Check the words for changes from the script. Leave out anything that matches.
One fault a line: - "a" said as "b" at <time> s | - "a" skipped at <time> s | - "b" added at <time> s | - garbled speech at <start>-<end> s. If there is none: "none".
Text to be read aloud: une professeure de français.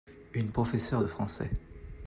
none